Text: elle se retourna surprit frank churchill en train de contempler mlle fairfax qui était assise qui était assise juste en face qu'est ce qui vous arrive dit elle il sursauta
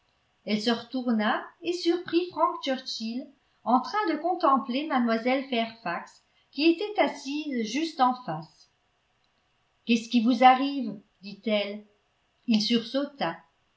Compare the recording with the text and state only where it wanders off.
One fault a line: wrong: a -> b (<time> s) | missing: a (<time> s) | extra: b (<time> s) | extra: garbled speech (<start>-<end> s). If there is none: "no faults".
extra: et (1.6 s)
missing: qui était assise (7.6 s)